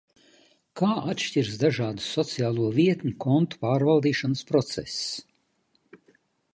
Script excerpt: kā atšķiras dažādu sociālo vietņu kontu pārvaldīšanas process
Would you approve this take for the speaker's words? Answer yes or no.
yes